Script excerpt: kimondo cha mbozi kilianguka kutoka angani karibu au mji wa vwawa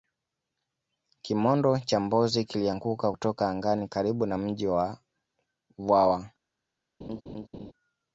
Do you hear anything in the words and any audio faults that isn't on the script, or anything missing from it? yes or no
yes